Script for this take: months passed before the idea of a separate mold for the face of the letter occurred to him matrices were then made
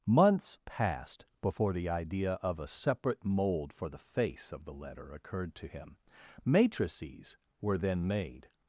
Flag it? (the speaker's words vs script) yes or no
no